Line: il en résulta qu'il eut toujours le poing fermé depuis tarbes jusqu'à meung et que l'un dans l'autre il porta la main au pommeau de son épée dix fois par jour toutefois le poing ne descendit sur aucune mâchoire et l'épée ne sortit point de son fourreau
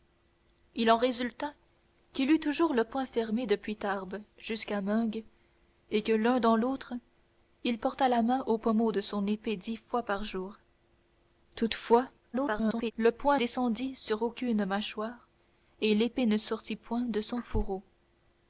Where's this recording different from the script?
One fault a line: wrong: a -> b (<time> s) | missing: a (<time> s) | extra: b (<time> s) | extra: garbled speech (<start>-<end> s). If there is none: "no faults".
extra: garbled speech (12.3-12.9 s)
missing: ne (13.4 s)